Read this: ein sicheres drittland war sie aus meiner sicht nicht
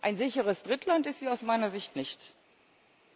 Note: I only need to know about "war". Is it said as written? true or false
false